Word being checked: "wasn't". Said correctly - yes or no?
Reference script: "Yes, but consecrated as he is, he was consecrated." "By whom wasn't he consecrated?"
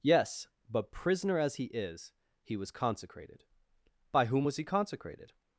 no